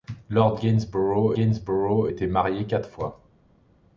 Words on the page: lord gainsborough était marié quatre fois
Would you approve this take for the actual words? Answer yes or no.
no